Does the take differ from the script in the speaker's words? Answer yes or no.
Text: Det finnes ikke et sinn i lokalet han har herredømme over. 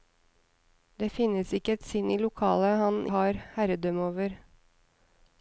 no